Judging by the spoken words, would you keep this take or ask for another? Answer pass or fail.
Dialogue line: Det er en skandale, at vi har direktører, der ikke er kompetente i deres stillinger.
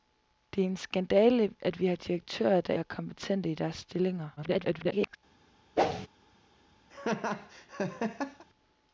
fail